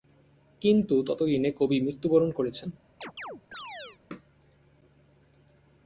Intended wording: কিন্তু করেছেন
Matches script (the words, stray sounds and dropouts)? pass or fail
fail